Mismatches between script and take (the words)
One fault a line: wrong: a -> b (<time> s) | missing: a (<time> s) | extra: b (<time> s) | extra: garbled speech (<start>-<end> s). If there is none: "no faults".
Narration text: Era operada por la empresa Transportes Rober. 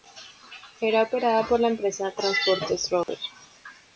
no faults